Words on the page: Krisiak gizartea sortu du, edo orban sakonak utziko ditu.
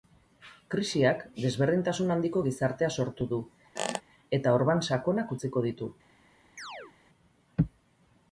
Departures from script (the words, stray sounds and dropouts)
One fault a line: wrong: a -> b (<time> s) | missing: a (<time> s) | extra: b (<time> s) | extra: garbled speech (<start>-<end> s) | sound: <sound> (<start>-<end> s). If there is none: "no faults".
extra: desberdintasun handiko (1.4 s)
sound: squeak (3.8-4.0 s)
wrong: edo -> eta (4.4 s)
sound: chirp (6.6-6.9 s)